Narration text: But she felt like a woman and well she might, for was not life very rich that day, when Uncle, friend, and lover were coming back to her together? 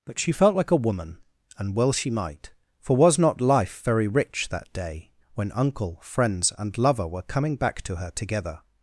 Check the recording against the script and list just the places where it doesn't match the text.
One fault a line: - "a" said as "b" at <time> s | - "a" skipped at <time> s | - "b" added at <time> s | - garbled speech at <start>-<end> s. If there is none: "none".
- "friend" said as "friends" at 6.0 s